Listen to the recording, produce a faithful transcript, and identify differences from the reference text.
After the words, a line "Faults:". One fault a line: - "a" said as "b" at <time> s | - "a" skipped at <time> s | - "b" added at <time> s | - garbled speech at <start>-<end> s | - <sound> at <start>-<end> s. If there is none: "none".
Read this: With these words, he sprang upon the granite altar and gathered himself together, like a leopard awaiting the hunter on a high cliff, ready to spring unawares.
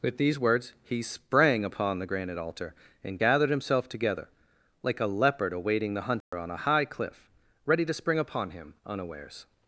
With these words, he sprang upon the granite altar and gathered himself together, like a leopard awaiting the hunter on a high cliff, ready to spring upon him unawares.
Faults:
- dropout at 6.2-6.3 s
- "upon him" added at 8.2 s